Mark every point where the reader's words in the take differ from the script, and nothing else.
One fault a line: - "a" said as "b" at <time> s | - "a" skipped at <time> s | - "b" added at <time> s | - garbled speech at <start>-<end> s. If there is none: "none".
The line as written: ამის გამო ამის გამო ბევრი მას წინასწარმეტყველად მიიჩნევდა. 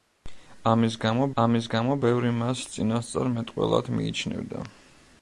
none